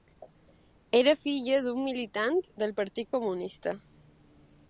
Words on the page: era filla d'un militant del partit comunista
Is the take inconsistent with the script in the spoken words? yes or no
no